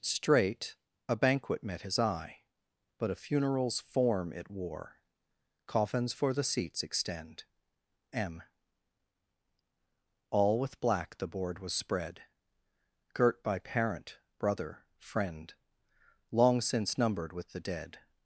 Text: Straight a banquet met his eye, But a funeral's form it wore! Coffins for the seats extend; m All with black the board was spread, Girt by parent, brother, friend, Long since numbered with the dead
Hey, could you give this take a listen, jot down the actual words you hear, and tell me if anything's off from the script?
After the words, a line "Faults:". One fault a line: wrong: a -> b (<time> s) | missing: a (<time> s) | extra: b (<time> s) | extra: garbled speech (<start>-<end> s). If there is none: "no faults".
Straight a banquet met his eye, But a funeral's form it wore! Coffins for the seats extend; m All with black the board was spread, Girt by parent, brother, friend, Long since numbered with the dead
Faults:
no faults